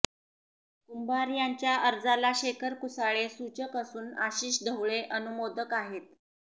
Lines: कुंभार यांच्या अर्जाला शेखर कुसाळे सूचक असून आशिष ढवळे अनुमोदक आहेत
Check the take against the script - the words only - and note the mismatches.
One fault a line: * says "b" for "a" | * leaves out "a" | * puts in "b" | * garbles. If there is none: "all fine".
all fine